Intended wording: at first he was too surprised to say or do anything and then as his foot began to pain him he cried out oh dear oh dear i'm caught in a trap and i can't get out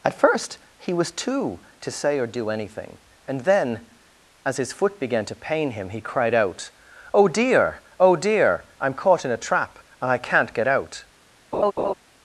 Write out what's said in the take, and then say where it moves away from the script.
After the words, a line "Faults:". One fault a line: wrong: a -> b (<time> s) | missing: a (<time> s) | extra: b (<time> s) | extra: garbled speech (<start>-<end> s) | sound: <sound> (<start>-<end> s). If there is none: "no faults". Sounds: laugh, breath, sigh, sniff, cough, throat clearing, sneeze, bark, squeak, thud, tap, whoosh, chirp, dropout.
at first he was too to say or do anything and then as his foot began to pain him he cried out oh dear oh dear i'm caught in a trap and i can't get out
Faults:
missing: surprised (1.6 s)
sound: laugh (11.5-11.9 s)